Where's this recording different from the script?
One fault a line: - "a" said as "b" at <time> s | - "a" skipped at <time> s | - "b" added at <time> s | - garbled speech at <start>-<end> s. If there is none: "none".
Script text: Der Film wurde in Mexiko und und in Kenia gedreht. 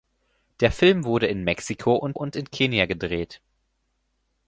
none